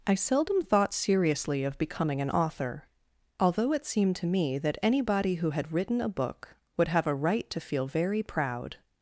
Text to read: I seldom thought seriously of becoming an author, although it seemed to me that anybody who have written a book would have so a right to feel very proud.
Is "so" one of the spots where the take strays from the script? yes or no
yes